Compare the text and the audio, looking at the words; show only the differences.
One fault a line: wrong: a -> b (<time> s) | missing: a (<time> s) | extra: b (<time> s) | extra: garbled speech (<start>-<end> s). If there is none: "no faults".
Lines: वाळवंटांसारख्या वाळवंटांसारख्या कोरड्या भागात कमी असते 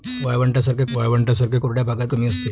no faults